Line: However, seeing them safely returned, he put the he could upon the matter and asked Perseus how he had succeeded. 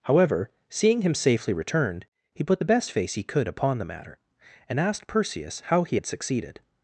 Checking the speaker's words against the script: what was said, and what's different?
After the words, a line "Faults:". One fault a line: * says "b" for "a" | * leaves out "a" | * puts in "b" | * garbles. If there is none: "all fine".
However, seeing him safely returned, he put the best face he could upon the matter and asked Perseus how he had succeeded.
Faults:
* says "him" for "them"
* puts in "best face"